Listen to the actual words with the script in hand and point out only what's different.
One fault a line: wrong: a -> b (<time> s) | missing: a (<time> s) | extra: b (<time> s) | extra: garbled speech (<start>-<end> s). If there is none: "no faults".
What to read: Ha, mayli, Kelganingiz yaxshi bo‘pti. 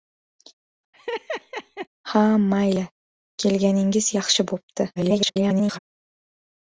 extra: garbled speech (5.0-5.8 s)